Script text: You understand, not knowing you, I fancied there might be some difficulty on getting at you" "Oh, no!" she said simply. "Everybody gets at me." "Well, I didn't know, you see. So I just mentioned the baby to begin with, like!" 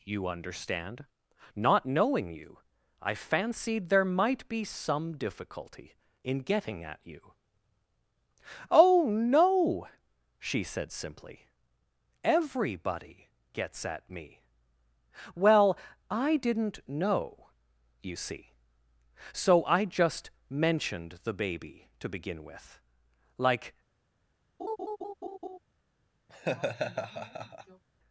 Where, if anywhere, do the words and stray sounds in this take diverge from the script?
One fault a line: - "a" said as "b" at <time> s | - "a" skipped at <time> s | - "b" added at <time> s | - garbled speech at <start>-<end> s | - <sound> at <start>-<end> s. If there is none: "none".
- "on" said as "in" at 6.2 s
- laugh at 24.6-25.6 s
- laugh at 26.3-27.8 s